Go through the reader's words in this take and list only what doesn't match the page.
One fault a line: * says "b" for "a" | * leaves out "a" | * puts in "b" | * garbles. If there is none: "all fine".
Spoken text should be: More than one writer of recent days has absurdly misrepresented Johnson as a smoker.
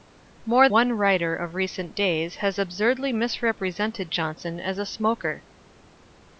* leaves out "than"